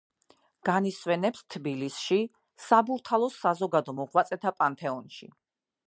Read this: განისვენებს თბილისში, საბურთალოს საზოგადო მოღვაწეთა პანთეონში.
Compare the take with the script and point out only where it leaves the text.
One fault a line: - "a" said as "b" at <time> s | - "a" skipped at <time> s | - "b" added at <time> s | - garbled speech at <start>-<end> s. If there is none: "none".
none